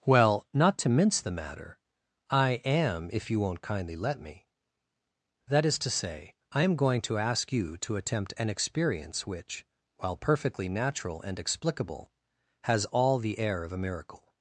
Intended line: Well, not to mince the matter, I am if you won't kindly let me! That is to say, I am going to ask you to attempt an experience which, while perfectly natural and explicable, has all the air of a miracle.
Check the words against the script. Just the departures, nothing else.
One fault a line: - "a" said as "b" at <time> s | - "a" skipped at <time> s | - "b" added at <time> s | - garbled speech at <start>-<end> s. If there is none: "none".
none